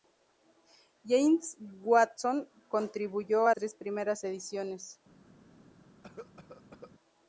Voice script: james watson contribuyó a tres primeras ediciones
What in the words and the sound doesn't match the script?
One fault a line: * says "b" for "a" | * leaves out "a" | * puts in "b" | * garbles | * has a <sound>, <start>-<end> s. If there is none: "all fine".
* has a cough, 6.0-6.9 s